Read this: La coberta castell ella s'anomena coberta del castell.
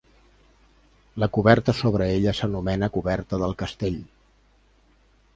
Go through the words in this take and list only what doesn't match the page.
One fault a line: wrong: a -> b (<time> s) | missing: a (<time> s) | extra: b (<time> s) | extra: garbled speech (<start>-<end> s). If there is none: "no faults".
wrong: castell -> sobre (1.8 s)